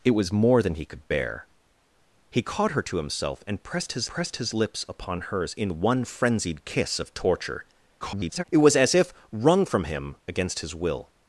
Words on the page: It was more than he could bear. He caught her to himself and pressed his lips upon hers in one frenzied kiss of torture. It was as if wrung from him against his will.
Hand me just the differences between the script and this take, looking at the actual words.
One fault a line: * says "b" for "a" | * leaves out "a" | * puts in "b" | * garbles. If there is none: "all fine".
* puts in "pressed his"
* garbles